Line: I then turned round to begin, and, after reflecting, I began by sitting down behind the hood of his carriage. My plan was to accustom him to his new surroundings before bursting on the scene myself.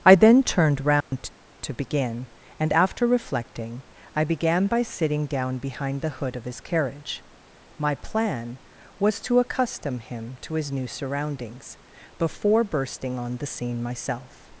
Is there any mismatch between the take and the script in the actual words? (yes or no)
no